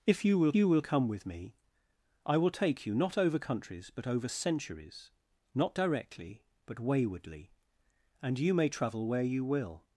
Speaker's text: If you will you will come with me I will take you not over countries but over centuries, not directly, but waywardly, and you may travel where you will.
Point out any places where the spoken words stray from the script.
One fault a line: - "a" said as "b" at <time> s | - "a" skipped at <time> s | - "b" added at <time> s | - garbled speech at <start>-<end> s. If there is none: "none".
none